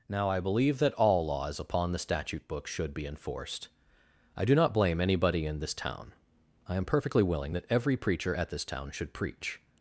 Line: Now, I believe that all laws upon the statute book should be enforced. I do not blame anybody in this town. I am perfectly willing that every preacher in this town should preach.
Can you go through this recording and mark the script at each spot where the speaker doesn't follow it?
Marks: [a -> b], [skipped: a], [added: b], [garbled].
Now, I believe that all laws upon the statute book should be enforced. I do not blame anybody in this town. I am perfectly willing that every preacher [in -> at] this town should preach.